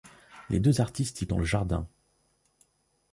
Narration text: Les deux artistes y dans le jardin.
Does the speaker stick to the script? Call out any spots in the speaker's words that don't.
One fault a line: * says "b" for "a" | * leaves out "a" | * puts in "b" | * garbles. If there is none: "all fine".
all fine